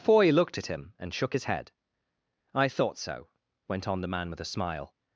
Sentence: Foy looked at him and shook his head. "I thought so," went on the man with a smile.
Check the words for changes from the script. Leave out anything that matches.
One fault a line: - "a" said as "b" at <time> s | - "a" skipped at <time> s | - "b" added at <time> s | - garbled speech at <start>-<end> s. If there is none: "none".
none